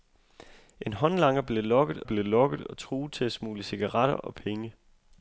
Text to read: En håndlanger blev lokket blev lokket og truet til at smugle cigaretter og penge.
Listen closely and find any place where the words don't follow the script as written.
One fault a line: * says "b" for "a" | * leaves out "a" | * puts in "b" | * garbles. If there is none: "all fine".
all fine